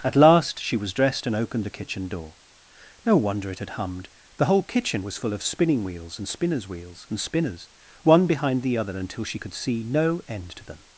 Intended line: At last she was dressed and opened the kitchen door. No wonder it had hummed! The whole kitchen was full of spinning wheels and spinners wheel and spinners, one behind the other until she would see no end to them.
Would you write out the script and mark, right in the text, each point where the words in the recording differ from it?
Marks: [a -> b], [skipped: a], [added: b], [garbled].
At last she was dressed and opened the kitchen door. No wonder it had hummed! The whole kitchen was full of spinning wheels and spinners [wheel -> wheels] and spinners, one behind the other until she [would -> could] see no end to them.